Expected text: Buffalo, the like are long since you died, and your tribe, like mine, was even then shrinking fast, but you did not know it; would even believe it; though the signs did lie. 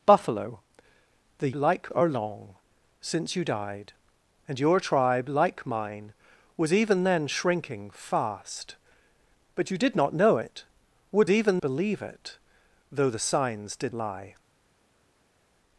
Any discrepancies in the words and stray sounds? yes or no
no